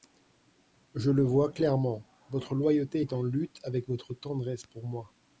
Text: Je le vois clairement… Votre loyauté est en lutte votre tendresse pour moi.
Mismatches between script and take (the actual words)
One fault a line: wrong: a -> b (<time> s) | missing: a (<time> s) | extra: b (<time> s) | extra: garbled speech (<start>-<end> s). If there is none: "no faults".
extra: avec (3.6 s)